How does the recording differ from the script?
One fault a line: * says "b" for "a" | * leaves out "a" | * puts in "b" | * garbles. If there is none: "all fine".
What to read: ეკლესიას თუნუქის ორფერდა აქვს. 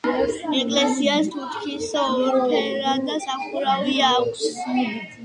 * puts in "სახურავი"